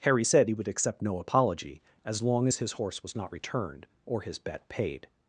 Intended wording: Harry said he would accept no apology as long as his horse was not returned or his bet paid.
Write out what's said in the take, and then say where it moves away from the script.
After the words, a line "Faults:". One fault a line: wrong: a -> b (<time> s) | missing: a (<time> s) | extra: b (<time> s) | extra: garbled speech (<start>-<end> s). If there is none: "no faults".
Harry said he would accept no apology as long as his horse was not returned or his bet paid.
Faults:
no faults